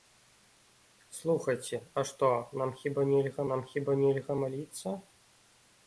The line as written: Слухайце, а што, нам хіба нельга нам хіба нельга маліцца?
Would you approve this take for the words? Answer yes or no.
yes